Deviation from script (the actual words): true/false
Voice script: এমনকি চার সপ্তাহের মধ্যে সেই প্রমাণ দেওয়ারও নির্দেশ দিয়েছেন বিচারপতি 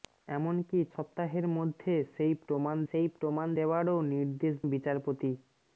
true